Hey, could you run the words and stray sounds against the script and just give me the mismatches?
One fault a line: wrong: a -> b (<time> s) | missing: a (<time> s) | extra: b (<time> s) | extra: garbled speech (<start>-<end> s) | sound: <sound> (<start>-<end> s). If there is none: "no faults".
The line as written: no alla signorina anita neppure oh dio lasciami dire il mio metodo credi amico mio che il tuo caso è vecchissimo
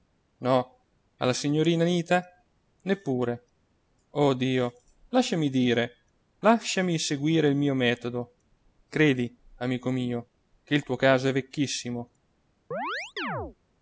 extra: lasciami seguire (6.4 s)
sound: chirp (12.7-13.6 s)